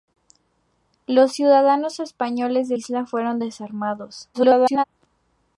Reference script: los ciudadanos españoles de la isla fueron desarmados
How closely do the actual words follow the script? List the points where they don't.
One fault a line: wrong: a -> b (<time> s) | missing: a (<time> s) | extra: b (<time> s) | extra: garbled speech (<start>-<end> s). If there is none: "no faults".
missing: la (2.8 s)
extra: garbled speech (4.3-4.8 s)